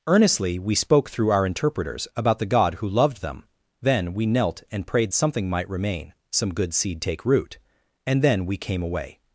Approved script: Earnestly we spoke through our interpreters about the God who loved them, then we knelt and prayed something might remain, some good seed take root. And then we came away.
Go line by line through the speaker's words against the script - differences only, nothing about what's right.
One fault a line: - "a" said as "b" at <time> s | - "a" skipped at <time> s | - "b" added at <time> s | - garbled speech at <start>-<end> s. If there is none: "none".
none